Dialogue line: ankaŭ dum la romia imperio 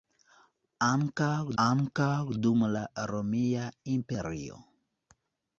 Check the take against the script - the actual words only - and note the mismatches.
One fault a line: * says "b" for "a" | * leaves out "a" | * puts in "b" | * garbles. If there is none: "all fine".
* puts in "ankaŭ"